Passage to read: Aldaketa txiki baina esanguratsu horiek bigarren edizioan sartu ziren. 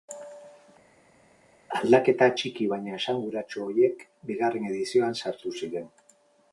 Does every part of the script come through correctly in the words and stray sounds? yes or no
yes